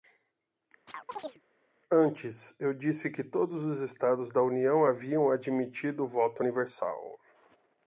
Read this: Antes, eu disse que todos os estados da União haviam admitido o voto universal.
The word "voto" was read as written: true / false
true